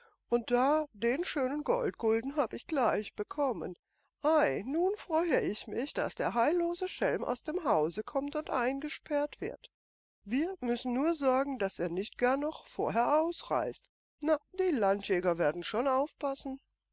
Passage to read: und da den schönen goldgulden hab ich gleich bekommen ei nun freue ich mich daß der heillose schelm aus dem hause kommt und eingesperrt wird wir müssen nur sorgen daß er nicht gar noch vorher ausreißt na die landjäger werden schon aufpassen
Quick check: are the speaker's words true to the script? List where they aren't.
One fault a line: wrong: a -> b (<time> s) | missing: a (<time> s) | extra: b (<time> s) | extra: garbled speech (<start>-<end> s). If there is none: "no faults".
no faults